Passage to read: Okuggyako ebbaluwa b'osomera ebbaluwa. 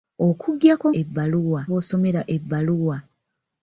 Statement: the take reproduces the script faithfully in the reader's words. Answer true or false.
true